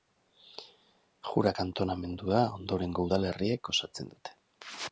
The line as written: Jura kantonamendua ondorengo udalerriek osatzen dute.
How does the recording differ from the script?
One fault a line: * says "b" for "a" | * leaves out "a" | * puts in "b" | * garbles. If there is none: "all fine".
all fine